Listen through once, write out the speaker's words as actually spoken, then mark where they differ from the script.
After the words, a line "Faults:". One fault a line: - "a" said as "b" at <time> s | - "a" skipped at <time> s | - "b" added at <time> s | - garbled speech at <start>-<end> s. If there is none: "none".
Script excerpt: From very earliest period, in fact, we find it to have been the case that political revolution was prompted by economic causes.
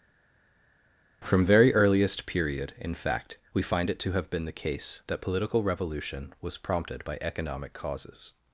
From very earliest period, in fact, we find it to have been the case that political revolution was prompted by economic causes.
Faults:
none